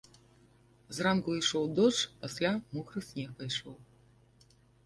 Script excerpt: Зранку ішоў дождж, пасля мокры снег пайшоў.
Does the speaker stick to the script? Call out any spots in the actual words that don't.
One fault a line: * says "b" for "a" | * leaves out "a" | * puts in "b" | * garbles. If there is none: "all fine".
all fine